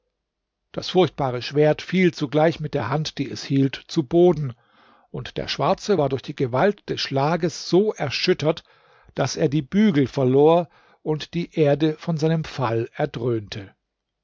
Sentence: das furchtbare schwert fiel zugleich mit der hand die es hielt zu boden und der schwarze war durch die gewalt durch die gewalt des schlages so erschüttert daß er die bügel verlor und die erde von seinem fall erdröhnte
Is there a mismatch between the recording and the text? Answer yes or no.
yes